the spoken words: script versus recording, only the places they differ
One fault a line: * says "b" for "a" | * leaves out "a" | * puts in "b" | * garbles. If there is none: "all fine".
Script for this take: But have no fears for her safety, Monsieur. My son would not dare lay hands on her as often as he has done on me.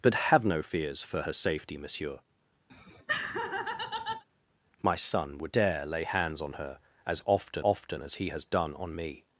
* leaves out "not"
* puts in "often"